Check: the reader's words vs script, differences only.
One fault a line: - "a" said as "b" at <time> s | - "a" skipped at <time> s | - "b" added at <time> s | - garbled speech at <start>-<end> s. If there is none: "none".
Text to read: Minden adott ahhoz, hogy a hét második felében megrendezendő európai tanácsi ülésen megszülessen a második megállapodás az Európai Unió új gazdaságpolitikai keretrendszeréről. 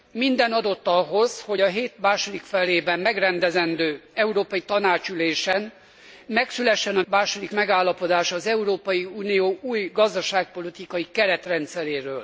none